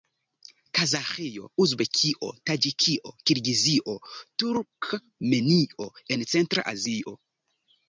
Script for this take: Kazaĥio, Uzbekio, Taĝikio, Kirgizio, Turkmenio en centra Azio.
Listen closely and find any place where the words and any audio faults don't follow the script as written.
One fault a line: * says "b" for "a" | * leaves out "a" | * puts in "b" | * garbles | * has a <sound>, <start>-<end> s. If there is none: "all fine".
all fine